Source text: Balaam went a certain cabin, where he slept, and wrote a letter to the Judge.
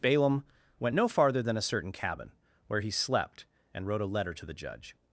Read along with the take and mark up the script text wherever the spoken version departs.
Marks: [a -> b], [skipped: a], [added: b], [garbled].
Balaam went [added: no farther than] a certain cabin, where he slept, and wrote a letter to the Judge.